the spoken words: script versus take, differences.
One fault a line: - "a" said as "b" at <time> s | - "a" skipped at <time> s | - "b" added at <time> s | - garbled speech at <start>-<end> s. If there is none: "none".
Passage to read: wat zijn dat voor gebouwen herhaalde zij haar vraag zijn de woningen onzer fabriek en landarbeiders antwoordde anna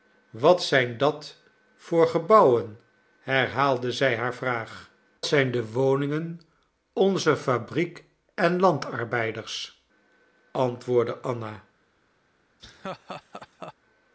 none